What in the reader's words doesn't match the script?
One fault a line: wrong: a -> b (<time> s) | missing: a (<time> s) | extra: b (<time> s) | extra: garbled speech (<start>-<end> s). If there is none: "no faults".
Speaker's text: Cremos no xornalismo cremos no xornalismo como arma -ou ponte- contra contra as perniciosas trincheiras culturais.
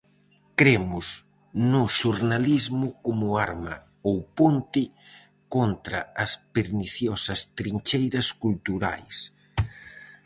missing: cremos no xornalismo (2.9 s)
missing: contra (6.0 s)